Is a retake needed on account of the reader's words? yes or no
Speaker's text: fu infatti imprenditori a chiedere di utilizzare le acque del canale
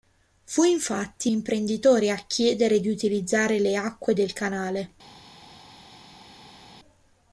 no